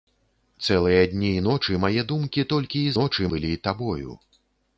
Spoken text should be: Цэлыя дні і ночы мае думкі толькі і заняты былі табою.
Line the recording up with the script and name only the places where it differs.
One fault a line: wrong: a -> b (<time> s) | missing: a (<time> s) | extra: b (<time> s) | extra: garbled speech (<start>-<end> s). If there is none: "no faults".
wrong: заняты -> ночы (3.0 s)